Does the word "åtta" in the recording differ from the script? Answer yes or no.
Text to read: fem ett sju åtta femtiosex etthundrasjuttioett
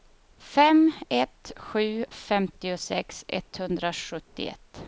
yes